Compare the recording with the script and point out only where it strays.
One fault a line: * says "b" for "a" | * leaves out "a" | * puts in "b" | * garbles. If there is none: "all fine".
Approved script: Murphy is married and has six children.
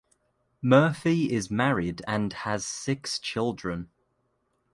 all fine